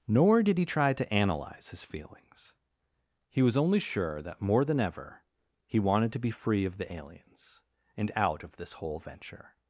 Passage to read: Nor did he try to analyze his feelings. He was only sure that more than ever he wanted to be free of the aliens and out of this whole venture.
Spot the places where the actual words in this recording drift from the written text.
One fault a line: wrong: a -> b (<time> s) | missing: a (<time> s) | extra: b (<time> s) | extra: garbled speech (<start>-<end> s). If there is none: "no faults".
no faults